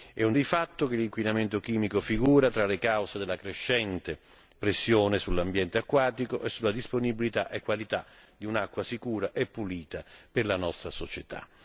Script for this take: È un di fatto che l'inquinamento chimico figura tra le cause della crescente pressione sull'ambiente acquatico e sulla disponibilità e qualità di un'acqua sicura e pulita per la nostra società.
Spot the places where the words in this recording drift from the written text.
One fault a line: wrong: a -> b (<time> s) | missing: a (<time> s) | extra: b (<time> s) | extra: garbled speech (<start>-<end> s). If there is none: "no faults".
no faults